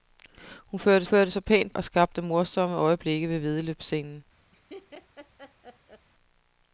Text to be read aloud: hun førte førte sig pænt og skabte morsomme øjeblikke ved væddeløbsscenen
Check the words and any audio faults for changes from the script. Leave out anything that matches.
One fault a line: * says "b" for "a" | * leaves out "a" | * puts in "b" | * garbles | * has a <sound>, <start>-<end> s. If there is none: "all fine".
* has a laugh, 4.5-6.1 s